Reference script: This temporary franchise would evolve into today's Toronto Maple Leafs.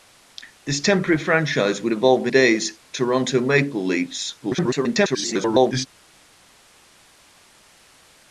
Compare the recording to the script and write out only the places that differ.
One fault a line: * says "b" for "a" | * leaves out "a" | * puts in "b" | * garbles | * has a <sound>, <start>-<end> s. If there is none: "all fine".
* leaves out "into"
* garbles